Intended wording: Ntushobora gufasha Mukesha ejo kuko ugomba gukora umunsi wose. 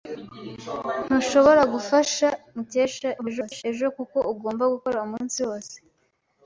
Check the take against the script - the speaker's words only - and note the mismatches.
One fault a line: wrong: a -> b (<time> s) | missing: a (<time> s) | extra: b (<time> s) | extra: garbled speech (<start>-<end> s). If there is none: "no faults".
extra: garbled speech (3.2-3.6 s)